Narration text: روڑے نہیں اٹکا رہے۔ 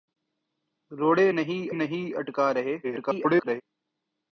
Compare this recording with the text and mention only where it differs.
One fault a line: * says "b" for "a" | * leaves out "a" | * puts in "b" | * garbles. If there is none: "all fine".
* puts in "نہیں"
* garbles